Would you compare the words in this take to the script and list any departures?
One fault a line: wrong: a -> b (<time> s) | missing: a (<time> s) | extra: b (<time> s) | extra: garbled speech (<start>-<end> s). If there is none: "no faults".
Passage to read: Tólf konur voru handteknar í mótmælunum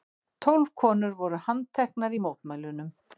no faults